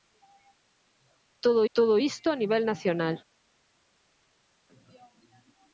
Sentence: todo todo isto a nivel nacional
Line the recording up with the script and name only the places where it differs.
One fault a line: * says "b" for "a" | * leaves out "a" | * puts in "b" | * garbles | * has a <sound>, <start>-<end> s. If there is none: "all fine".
all fine